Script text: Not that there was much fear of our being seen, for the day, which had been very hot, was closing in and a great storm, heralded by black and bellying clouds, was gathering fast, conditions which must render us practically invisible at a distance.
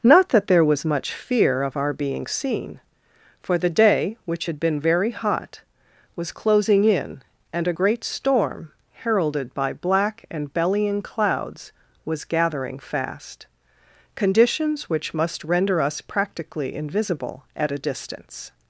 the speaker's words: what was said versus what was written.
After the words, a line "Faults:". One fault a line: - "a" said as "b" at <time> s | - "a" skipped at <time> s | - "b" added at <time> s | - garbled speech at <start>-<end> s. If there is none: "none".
Not that there was much fear of our being seen, for the day, which had been very hot, was closing in and a great storm, heralded by black and bellying clouds, was gathering fast, conditions which must render us practically invisible at a distance.
Faults:
none